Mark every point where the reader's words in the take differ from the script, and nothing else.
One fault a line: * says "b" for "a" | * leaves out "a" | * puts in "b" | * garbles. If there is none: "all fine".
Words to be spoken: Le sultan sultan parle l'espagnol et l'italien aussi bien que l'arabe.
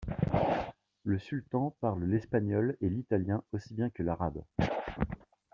* leaves out "sultan"